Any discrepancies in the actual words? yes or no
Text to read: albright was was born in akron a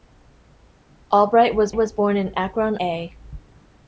no